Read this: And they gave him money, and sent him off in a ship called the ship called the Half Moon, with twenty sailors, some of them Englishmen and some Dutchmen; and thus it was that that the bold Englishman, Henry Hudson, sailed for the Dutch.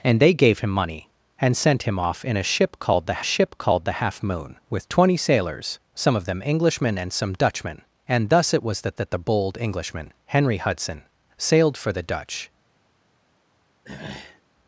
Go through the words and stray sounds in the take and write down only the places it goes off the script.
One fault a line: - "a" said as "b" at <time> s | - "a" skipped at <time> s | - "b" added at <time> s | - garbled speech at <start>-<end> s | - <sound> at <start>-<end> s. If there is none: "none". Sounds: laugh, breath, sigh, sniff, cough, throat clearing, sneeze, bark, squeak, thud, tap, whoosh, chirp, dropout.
- throat clearing at 13.8-14.4 s